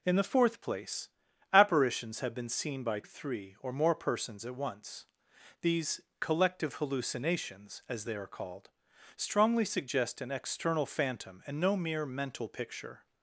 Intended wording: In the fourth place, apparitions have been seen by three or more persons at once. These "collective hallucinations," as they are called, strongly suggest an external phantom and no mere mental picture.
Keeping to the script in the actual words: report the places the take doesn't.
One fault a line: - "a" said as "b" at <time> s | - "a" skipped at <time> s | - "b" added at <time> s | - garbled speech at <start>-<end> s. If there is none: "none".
none